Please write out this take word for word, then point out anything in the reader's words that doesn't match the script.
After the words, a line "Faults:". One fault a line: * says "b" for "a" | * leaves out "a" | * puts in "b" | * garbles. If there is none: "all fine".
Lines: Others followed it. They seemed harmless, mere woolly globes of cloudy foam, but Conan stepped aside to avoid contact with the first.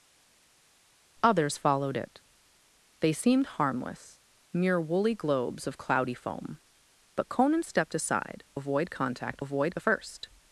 Others followed it. They seemed harmless, mere woolly globes of cloudy foam, but Conan stepped aside avoid contact avoid the first.
Faults:
* leaves out "to"
* says "avoid" for "with"